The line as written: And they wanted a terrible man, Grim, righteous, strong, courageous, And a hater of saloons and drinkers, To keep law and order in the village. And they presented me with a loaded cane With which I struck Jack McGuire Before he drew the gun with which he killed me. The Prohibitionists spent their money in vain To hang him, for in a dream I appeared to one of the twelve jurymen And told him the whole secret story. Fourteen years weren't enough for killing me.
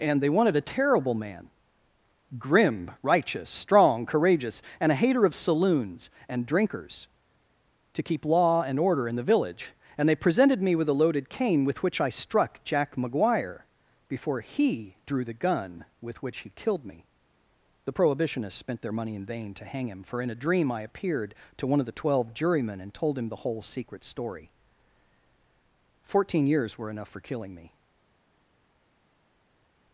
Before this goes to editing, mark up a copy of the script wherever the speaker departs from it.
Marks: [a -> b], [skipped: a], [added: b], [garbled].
And they wanted a terrible man, Grim, righteous, strong, courageous, And a hater of saloons and drinkers, To keep law and order in the village. And they presented me with a loaded cane With which I struck Jack McGuire Before he drew the gun with which he killed me. The Prohibitionists spent their money in vain To hang him, for in a dream I appeared to one of the twelve jurymen And told him the whole secret story. Fourteen years [weren't -> were] enough for killing me.